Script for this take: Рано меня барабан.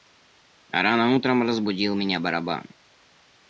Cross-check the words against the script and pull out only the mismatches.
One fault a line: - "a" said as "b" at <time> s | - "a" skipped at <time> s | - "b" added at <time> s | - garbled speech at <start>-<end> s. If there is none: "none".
- "утром разбудил" added at 1.1 s